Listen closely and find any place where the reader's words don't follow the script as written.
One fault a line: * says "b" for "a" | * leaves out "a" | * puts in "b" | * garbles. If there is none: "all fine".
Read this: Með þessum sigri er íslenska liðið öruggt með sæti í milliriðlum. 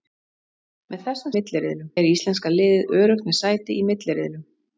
* says "milliriðlum" for "sigri"